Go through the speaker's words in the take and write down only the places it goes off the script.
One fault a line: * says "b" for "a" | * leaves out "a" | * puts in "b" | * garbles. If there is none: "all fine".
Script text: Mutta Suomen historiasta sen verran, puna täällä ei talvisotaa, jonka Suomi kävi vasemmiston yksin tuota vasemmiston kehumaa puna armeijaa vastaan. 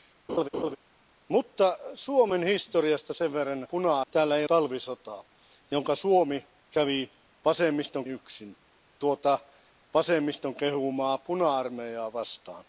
all fine